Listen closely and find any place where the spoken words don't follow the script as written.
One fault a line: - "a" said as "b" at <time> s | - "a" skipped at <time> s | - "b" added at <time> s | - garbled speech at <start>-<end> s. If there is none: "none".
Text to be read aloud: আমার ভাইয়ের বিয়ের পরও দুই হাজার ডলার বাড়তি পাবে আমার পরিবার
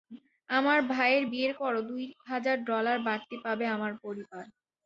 none